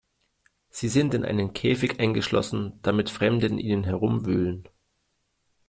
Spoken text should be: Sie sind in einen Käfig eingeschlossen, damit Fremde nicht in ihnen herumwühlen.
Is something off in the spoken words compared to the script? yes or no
yes